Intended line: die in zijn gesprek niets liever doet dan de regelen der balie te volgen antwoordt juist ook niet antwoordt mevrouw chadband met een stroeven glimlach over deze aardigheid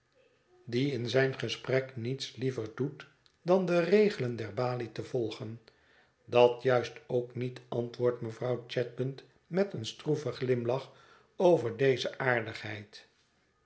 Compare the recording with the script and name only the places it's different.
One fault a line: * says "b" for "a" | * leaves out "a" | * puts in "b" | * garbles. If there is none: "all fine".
* says "dat" for "antwoordt"